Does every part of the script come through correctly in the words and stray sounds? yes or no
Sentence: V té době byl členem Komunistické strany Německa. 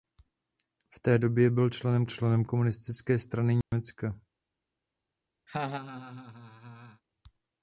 no